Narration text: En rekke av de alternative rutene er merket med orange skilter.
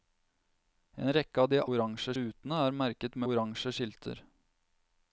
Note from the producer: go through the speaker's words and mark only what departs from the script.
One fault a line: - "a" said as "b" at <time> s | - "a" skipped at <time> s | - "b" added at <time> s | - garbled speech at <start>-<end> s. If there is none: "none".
- "alternative" said as "orange" at 1.7 s
- "med" skipped at 3.2 s